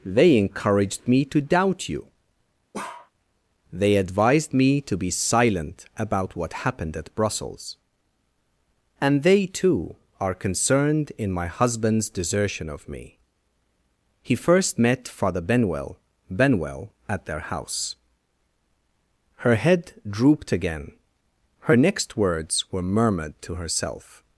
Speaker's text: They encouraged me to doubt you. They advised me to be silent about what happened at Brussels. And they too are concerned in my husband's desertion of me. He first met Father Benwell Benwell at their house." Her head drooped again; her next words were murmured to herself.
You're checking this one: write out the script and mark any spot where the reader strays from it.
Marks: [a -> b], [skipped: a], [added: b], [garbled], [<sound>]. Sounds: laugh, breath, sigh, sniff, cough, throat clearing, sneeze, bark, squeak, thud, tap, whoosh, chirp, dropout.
They encouraged me to doubt you. [bark] They advised me to be silent about what happened at Brussels. And they too are concerned in my husband's desertion of me. He first met Father Benwell Benwell at their house." Her head drooped again; her next words were murmured to herself.